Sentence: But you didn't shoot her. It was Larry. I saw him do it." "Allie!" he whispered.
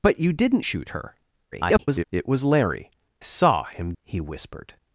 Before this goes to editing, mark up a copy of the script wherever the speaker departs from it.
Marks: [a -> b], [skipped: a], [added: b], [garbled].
But you didn't shoot her. [garbled] It was Larry. [skipped: I] saw him [skipped: do it." "Allie!"] he whispered.